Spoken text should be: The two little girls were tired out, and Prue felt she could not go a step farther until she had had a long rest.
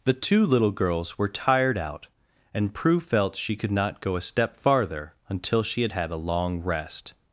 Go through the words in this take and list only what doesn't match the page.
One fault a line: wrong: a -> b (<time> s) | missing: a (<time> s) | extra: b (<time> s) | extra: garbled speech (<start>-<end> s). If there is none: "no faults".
no faults